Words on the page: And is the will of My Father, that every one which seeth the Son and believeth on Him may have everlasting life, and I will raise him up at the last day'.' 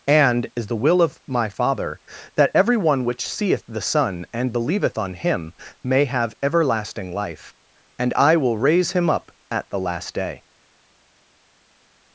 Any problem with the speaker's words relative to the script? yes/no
no